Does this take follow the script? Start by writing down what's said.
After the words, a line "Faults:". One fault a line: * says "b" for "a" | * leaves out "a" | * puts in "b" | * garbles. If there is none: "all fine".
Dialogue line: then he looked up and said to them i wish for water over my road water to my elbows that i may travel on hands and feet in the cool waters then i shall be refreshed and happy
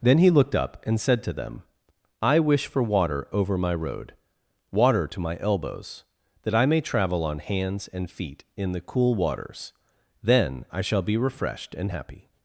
then he looked up and said to them i wish for water over my road water to my elbows that i may travel on hands and feet in the cool waters then i shall be refreshed and happy
Faults:
all fine